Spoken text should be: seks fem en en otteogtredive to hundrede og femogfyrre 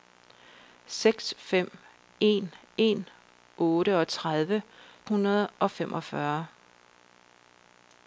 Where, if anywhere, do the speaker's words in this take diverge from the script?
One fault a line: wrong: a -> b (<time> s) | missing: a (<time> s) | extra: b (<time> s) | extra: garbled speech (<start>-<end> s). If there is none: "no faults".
missing: to (4.6 s)